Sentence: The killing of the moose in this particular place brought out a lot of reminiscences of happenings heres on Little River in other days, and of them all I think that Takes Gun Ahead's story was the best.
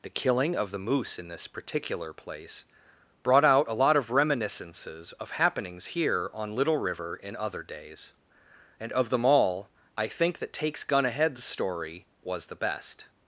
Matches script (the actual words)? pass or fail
fail